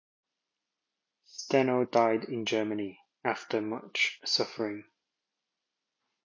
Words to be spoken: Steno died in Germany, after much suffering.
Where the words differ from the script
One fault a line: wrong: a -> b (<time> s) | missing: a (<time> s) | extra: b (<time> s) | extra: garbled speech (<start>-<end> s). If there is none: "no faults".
no faults